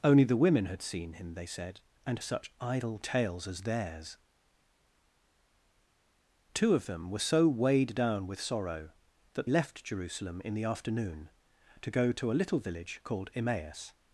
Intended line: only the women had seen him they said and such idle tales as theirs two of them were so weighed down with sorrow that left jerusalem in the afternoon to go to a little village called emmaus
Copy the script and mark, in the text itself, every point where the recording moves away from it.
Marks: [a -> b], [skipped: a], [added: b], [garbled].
only the women had seen him they said and such idle tales as theirs two of them were so weighed down with sorrow that left jerusalem in the afternoon to go to a little village called emmaus